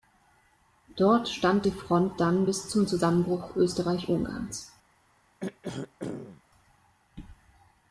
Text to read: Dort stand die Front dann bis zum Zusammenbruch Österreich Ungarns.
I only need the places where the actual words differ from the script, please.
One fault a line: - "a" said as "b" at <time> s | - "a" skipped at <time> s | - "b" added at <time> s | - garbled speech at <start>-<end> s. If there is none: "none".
none